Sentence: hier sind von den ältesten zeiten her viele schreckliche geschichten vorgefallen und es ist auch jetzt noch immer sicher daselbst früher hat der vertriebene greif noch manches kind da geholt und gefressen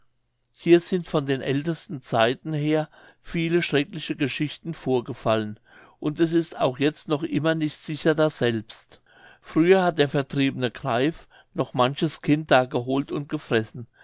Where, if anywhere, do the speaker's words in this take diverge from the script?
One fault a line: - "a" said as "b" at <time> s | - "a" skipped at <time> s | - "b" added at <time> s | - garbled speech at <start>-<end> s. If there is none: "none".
- "nicht" added at 7.6 s